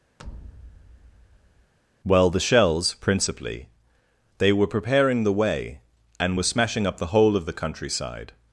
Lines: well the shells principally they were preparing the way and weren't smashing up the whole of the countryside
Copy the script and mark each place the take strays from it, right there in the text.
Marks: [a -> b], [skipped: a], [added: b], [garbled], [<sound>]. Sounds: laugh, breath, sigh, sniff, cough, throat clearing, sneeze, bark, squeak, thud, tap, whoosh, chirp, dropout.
[thud] well the shells principally they were preparing the way and [weren't -> were] smashing up the whole of the countryside